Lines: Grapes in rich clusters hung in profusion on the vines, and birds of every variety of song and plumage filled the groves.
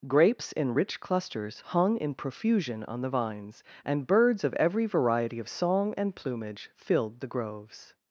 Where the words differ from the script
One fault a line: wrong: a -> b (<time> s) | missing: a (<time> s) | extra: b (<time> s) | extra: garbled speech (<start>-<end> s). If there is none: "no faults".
no faults